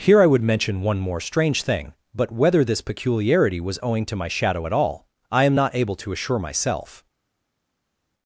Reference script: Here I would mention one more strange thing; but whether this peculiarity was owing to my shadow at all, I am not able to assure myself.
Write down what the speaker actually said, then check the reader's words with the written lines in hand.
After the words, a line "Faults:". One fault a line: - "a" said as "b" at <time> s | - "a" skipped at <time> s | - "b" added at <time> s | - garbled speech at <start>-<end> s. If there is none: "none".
Here I would mention one more strange thing; but whether this peculiarity was owing to my shadow at all, I am not able to assure myself.
Faults:
none